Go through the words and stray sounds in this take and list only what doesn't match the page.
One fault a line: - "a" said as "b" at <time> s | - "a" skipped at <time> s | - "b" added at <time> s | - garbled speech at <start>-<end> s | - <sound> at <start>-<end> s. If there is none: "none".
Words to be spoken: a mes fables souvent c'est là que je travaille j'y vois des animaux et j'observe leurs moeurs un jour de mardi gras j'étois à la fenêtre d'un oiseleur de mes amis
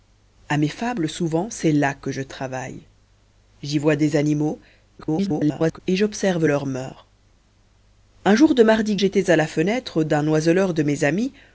- garbled speech at 5.0-5.8 s
- "gras" skipped at 9.0 s